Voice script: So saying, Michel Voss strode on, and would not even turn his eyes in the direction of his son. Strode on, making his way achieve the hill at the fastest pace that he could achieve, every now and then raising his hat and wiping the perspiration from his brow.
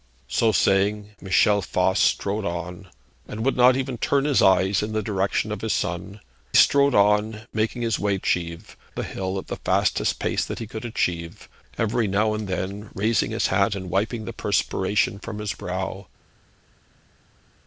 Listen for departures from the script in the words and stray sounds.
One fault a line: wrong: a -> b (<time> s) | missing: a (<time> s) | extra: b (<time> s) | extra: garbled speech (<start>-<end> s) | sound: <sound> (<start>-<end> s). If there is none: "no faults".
no faults